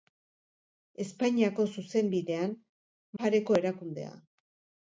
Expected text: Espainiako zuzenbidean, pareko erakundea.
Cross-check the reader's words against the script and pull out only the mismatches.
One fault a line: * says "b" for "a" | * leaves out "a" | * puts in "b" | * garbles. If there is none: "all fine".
all fine